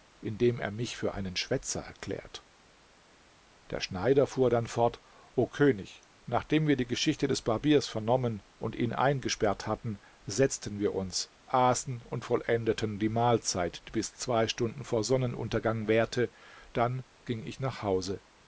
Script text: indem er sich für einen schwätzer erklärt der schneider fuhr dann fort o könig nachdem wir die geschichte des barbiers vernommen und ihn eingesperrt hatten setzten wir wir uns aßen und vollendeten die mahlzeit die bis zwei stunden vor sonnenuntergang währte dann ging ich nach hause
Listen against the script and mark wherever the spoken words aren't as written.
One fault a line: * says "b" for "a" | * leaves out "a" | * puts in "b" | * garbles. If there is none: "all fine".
* says "mich" for "sich"
* leaves out "wir"